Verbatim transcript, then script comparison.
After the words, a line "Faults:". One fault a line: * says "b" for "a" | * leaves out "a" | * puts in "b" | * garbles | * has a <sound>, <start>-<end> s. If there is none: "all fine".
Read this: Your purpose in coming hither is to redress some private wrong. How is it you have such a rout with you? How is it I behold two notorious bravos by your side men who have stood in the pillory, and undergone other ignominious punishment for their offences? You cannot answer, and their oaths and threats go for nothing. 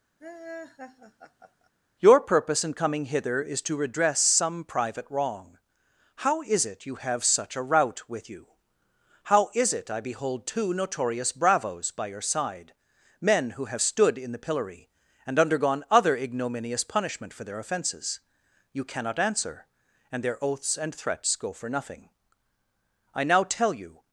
Your purpose in coming hither is to redress some private wrong. How is it you have such a rout with you? How is it I behold two notorious bravos by your side men who have stood in the pillory, and undergone other ignominious punishment for their offences? You cannot answer, and their oaths and threats go for nothing. I now tell you
Faults:
* has a laugh, 0.2-1.7 s
* puts in "I now tell you"